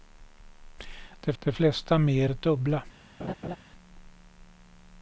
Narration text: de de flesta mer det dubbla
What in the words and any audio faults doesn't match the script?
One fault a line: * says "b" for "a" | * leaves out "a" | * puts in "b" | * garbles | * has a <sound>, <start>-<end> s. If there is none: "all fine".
* has a laugh, 3.2-3.6 s